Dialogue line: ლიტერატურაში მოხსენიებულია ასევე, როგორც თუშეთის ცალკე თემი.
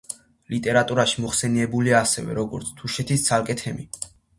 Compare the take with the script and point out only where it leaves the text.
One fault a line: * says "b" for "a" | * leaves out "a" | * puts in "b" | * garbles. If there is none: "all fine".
all fine